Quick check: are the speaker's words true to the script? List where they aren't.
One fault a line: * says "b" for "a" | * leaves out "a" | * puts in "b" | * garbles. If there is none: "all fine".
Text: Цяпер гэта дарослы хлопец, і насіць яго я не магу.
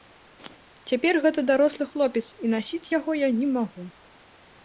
all fine